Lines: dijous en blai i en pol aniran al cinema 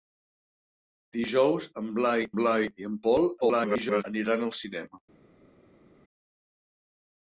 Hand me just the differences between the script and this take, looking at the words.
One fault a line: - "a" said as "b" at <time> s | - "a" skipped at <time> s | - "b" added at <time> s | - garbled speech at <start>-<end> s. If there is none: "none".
- "blai" added at 2.4 s
- garbled speech at 3.4-4.0 s